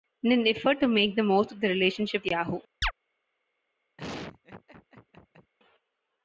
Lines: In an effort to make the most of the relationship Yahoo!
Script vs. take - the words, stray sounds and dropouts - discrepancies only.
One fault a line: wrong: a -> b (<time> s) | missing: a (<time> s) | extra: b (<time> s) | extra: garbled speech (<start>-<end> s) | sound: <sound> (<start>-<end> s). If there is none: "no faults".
sound: chirp (2.8-2.9 s)
sound: laugh (4.0-5.5 s)